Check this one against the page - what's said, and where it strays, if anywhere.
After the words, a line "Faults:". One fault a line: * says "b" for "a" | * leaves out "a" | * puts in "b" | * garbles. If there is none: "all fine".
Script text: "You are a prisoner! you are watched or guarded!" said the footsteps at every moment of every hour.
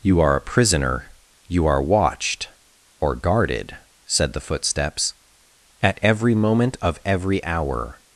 "You are a prisoner! you are watched or guarded!" said the footsteps at every moment of every hour.
Faults:
all fine